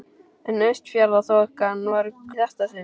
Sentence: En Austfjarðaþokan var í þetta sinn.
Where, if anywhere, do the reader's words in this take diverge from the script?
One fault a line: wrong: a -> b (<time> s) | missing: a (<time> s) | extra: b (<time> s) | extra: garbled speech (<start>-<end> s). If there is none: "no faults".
no faults